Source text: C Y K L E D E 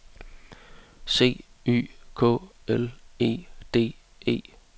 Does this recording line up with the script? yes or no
yes